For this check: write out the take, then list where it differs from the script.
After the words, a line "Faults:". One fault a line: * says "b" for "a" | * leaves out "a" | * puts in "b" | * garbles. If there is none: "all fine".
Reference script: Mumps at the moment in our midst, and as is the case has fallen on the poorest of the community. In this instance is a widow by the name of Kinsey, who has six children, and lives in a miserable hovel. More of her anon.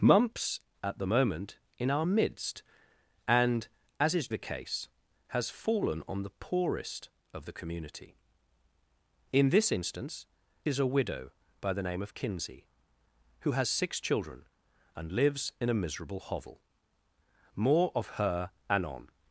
Mumps at the moment in our midst, and as is the case has fallen on the poorest of the community. In this instance is a widow by the name of Kinsey, who has six children, and lives in a miserable hovel. More of her anon.
Faults:
all fine